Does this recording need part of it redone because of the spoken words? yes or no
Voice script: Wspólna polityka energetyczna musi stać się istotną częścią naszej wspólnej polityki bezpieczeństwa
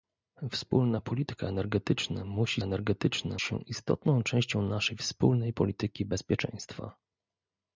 yes